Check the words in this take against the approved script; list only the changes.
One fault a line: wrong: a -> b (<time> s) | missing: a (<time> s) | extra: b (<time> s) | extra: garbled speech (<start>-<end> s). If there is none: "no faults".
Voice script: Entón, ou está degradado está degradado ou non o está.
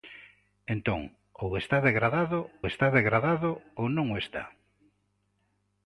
no faults